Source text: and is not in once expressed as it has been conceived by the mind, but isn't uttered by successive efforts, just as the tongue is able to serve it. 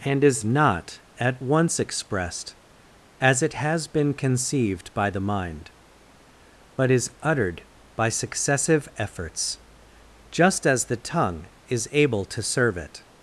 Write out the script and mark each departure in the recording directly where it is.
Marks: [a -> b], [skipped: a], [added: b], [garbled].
and is not [in -> at] once expressed as it has been conceived by the mind, but [isn't -> is] uttered by successive efforts, just as the tongue is able to serve it.